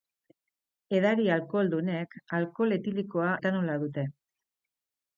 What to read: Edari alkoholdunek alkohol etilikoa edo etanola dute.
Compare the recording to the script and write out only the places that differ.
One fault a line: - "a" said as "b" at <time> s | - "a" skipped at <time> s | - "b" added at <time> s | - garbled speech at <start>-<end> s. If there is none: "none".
- "edo" skipped at 3.3 s